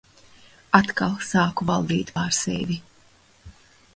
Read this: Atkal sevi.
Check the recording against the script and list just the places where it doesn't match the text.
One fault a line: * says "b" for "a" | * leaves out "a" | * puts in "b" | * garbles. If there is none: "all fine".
* puts in "sāku valdīt pār"